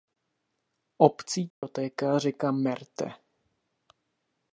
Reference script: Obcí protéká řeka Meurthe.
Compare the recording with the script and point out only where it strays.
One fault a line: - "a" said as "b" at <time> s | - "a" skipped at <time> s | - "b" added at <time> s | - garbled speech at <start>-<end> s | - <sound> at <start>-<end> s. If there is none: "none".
- dropout at 1.5-1.6 s